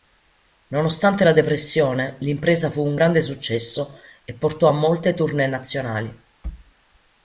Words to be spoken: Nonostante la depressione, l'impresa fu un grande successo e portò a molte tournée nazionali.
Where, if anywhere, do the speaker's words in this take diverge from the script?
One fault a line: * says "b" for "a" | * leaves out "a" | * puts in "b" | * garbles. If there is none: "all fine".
all fine